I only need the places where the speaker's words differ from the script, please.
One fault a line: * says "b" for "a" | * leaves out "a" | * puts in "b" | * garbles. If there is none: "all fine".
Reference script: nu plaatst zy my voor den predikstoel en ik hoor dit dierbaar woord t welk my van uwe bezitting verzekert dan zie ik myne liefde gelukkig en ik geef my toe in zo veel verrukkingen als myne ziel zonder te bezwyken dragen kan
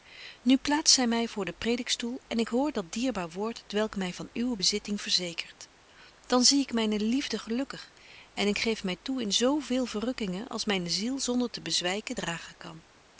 * says "dat" for "dit"